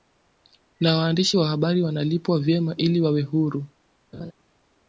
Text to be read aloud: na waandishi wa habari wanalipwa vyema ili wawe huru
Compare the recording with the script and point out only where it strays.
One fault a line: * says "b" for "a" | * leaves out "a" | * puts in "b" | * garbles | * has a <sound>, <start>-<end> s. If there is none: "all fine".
* has a laugh, 4.1-4.3 s